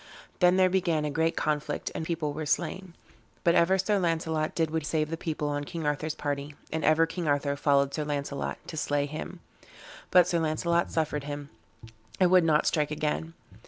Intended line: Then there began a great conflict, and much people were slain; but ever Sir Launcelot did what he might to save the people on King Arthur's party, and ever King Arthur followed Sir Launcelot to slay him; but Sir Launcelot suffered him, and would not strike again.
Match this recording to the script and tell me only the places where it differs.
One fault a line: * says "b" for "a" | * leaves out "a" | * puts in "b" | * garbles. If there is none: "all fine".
* leaves out "much"
* leaves out "he might to"